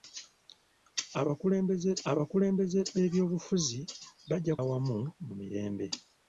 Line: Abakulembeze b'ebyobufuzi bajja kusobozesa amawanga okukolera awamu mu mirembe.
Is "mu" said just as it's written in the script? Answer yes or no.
yes